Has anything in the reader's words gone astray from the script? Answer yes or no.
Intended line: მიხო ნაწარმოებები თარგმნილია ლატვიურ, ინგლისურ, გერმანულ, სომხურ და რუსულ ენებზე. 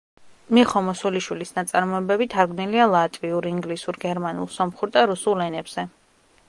yes